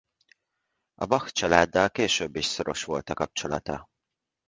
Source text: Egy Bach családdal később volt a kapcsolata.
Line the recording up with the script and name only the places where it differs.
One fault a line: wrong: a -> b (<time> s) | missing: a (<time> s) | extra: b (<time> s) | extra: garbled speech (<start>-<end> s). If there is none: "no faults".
wrong: Egy -> A (0.9 s)
extra: is szoros (2.4 s)